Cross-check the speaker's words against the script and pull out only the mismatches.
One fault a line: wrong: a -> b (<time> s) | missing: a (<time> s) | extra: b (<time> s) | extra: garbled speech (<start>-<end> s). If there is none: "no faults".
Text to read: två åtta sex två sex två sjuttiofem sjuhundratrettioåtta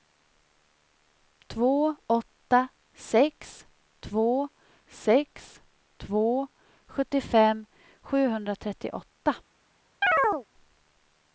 no faults